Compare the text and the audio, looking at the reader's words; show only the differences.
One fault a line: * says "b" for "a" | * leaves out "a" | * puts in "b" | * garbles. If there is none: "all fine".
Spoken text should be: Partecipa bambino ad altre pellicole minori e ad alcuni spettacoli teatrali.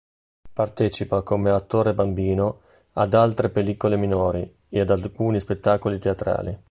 * puts in "come attore"